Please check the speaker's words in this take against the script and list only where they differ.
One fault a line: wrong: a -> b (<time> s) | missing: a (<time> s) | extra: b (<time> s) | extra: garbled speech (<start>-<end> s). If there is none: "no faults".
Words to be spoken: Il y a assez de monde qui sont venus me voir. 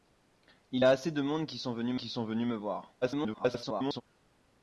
missing: y (0.8 s)
extra: qui sont venus (2.0 s)
extra: garbled speech (3.0-4.0 s)